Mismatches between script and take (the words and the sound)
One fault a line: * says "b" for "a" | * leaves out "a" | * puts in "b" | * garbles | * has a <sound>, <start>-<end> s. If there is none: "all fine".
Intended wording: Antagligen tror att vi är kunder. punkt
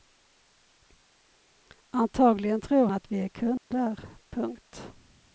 * has a dropout, 3.6-3.7 s